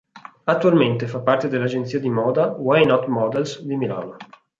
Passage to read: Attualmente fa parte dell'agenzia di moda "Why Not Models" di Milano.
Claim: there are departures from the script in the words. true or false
false